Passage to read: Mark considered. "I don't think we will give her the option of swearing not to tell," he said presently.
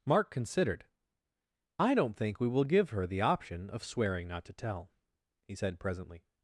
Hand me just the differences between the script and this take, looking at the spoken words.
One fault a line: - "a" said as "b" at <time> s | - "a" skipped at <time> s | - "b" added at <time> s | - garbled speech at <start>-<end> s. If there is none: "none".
none